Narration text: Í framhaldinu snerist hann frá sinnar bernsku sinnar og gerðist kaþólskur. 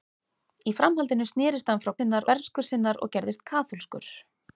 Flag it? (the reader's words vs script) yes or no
no